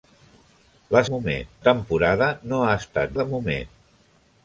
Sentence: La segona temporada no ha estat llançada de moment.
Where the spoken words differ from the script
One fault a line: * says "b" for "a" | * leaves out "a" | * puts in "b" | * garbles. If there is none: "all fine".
* says "moment" for "segona"
* leaves out "llançada"